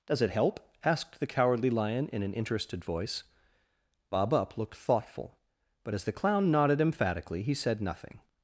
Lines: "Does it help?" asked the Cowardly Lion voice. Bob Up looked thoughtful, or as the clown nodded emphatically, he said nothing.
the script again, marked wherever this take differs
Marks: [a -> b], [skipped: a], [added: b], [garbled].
"Does it help?" asked the Cowardly Lion [added: in an interested] voice. Bob Up looked thoughtful, [or -> but] as the clown nodded emphatically, he said nothing.